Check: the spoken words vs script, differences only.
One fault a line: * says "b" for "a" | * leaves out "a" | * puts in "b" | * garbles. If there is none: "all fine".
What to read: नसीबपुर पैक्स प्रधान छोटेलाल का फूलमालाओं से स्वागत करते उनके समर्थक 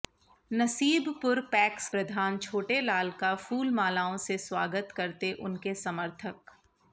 all fine